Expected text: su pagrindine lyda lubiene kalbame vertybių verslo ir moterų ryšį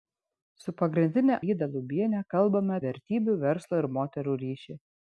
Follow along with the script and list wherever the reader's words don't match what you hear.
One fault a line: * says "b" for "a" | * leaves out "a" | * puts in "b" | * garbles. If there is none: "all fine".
all fine